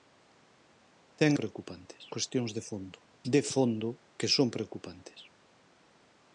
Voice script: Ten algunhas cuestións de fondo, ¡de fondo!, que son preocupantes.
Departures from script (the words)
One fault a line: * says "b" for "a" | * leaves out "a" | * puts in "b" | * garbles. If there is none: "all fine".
* says "preocupantes" for "algunhas"